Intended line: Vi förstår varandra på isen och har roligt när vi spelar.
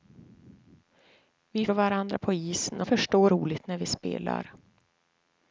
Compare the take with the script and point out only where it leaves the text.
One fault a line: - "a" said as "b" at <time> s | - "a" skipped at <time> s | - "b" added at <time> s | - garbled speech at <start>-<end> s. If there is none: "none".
- "förstår" skipped at 1.6 s
- "har" said as "förstår" at 2.8 s